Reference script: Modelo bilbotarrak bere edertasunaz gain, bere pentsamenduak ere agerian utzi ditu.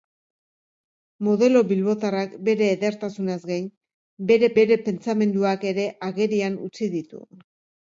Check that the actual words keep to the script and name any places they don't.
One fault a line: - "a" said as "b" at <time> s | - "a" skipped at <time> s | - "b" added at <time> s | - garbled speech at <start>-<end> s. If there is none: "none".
- "bere" added at 4.6 s